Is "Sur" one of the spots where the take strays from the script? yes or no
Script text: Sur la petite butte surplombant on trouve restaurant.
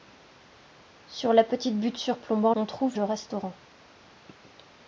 no